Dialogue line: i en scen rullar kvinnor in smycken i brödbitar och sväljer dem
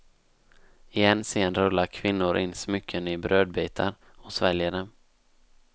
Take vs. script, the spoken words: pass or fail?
pass